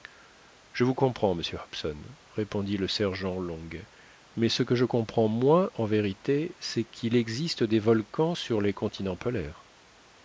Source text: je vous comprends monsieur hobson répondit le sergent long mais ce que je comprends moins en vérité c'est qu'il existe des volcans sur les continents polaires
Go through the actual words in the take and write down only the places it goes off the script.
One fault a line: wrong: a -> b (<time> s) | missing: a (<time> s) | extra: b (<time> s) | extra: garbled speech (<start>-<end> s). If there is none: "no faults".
no faults